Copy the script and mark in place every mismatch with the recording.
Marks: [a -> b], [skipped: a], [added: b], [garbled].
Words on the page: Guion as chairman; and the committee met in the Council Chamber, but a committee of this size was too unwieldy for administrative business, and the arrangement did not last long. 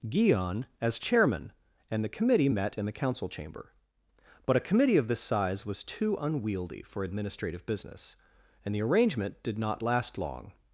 Guion as chairman; and the committee met in the Council Chamber, but a committee of this size was too unwieldy for administrative business, and the arrangement did not last long.